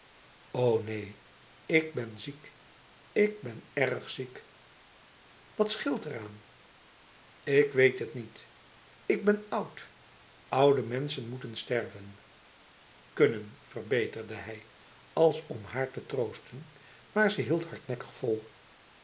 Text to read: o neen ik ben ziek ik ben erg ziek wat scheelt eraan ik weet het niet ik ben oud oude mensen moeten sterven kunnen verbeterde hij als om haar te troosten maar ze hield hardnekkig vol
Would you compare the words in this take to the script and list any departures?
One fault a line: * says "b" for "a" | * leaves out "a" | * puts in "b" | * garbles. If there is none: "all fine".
all fine